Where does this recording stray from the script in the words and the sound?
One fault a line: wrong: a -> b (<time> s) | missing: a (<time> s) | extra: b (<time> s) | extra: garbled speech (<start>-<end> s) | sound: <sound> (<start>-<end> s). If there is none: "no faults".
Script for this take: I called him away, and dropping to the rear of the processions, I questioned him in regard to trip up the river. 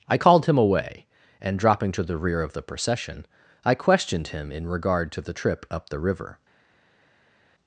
wrong: processions -> procession (2.6 s)
extra: the (5.2 s)